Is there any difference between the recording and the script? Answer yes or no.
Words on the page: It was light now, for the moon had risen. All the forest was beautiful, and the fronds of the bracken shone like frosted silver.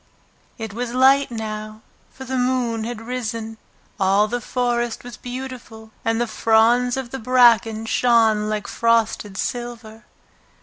no